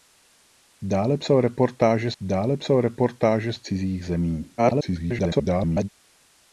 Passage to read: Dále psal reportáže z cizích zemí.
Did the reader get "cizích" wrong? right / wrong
right